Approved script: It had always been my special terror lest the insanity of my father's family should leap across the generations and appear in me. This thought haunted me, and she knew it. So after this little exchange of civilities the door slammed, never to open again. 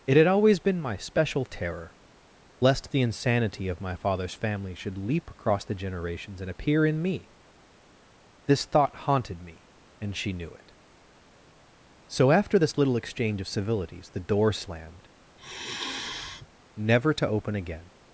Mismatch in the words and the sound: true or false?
true